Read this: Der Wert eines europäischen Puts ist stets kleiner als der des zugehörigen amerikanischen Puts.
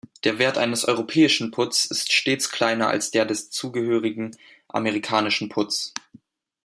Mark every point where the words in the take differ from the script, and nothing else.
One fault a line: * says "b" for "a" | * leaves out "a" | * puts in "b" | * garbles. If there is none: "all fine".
all fine